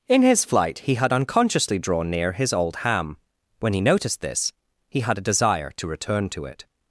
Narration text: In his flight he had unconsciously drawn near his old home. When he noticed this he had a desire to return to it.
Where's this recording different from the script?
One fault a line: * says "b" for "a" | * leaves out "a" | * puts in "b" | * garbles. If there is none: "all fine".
* says "ham" for "home"